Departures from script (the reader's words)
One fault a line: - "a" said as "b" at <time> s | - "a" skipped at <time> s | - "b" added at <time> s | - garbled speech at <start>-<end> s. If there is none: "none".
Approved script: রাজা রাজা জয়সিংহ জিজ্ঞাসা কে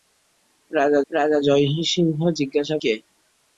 none